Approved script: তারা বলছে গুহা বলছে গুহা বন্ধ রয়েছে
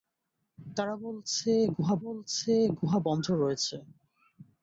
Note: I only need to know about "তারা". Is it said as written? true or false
true